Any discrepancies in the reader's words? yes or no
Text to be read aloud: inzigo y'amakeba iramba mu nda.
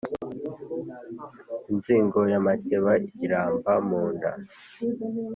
no